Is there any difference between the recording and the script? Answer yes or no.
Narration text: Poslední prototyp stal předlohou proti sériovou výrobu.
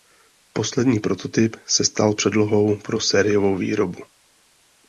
yes